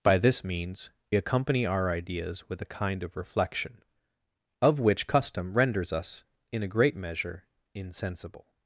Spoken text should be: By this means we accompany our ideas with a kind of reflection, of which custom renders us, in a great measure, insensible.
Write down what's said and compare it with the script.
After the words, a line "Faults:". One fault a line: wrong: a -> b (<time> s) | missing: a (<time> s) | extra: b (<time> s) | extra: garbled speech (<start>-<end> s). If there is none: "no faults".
By this means accompany our ideas with a kind of reflection, of which custom renders us, in a great measure, insensible.
Faults:
missing: we (0.9 s)